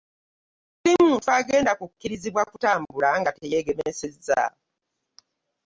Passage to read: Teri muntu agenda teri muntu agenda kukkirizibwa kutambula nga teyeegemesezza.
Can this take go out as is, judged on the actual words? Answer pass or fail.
fail